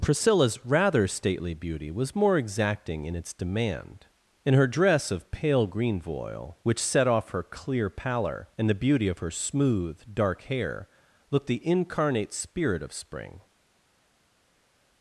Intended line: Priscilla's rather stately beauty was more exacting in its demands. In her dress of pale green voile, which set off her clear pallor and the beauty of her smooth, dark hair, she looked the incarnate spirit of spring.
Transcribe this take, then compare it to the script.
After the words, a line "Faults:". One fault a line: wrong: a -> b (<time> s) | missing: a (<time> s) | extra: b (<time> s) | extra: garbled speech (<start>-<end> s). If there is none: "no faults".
Priscilla's rather stately beauty was more exacting in its demand. In her dress of pale green voile, which set off her clear pallor and the beauty of her smooth, dark hair, looked the incarnate spirit of spring.
Faults:
wrong: demands -> demand (3.3 s)
missing: she (10.9 s)